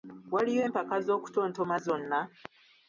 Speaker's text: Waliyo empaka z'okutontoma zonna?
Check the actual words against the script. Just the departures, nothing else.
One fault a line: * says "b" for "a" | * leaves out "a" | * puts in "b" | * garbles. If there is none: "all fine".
all fine